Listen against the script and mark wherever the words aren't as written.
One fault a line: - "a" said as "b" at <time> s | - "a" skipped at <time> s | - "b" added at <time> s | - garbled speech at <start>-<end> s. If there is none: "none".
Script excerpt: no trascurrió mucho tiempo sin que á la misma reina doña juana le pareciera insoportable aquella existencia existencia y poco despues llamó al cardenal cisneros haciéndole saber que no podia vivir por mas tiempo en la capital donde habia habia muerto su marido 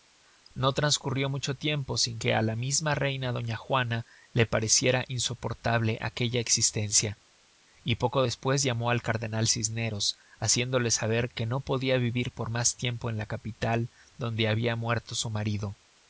- "existencia" skipped at 7.2 s
- "habia" skipped at 14.8 s